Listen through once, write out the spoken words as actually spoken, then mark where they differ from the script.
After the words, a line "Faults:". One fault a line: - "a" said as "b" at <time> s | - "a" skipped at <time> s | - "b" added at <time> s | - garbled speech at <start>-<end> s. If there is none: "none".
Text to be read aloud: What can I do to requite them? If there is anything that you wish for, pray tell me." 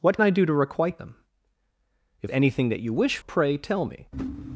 What I do to requite them? If anything that you wish pray tell me."
Faults:
- "can" skipped at 0.2 s
- "there is" skipped at 2.3 s
- "for" skipped at 3.2 s